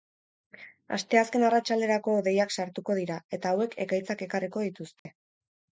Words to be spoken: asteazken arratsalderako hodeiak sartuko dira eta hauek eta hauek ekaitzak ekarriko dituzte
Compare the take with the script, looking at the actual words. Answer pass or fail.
fail